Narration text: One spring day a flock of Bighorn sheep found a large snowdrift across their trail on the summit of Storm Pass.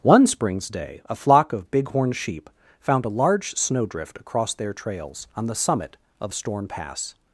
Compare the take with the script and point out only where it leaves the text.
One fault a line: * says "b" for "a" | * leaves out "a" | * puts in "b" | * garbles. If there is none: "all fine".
* says "springs" for "spring"
* says "trails" for "trail"